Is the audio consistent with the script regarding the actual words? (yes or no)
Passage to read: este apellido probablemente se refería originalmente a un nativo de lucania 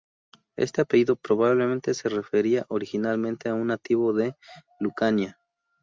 yes